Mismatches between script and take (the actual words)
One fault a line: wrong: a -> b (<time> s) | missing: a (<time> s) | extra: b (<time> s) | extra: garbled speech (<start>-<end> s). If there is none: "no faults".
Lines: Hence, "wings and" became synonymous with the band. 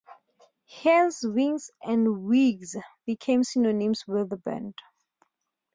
extra: wigs (2.2 s)